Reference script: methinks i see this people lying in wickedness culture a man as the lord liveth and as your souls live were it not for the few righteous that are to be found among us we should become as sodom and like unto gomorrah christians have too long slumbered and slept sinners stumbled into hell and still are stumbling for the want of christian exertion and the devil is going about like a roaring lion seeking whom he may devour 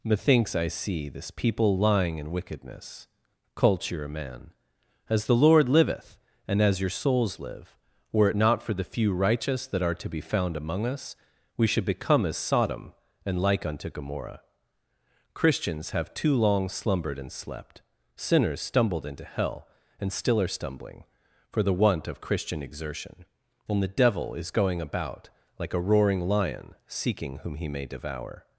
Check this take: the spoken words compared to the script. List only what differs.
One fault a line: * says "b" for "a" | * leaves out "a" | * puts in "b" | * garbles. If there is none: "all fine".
all fine